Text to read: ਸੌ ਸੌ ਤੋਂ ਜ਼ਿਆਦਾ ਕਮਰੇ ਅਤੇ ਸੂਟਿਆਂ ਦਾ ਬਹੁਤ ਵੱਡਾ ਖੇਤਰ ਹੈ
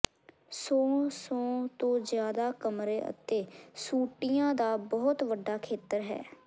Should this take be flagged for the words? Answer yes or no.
no